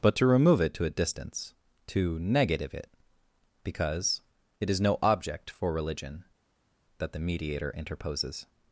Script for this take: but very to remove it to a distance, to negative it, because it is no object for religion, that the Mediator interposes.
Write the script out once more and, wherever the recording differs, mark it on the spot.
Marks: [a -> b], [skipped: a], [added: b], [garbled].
but [skipped: very] to remove it to a distance, to negative it, because it is no object for religion, that the Mediator interposes.